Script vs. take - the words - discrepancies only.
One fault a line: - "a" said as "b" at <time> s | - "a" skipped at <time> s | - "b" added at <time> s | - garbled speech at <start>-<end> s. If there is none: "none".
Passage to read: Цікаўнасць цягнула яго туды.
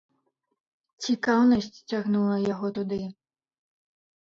none